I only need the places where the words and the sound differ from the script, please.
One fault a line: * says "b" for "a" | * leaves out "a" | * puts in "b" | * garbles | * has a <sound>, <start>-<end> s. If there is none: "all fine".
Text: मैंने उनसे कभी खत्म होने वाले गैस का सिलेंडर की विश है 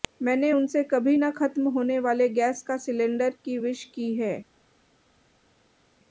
* puts in "न"
* puts in "की"